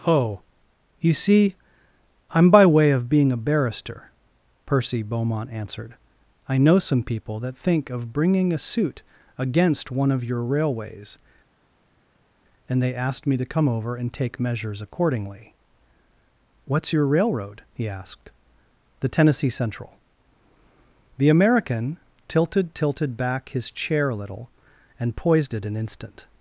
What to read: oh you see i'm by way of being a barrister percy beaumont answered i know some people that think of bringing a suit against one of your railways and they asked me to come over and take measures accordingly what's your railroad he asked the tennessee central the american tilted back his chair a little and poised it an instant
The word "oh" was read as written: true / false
true